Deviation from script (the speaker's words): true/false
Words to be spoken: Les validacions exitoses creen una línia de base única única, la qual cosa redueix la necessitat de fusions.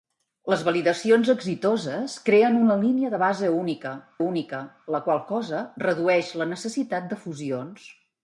false